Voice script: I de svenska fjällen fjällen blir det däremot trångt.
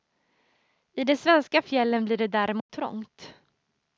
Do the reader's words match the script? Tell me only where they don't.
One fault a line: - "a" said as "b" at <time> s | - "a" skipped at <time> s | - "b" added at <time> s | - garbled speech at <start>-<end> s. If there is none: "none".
- "fjällen" skipped at 2.0 s